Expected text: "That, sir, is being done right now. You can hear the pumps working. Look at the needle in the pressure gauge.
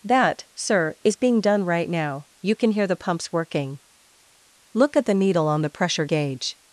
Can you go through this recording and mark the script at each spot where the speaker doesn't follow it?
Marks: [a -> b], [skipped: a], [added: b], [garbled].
"That, sir, is being done right now. You can hear the pumps working. Look at the needle [in -> on] the pressure gauge.